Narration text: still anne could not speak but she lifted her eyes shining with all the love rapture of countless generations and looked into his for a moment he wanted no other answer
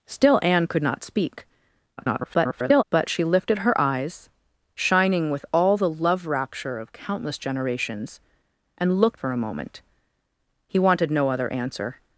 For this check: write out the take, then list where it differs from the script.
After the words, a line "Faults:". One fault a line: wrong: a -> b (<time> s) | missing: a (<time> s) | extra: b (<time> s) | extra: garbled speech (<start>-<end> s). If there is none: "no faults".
still anne could not speak [garbled] but she lifted her eyes shining with all the love rapture of countless generations and looked for a moment he wanted no other answer
Faults:
extra: garbled speech (2.0-2.8 s)
missing: into his (9.2 s)